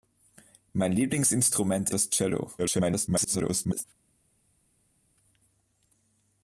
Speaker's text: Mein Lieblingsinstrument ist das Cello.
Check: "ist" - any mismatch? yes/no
yes